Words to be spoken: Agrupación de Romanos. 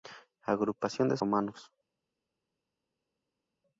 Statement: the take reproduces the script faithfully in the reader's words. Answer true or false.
true